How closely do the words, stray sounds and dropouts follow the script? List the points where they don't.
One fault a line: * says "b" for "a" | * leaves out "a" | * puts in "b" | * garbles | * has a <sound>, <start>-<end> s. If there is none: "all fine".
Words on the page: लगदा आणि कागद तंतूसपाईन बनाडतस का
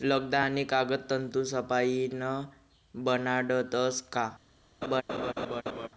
* has a laugh, 4.8-5.9 s